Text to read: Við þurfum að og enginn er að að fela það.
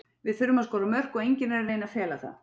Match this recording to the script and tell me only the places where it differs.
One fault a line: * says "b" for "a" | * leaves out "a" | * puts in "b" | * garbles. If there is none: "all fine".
* puts in "skora mörk"
* puts in "reyna"